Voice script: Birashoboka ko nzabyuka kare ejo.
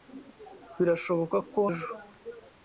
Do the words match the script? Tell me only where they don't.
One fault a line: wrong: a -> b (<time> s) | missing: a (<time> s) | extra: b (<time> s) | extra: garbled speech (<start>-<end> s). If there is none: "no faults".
missing: nzabyuka kare (1.6 s)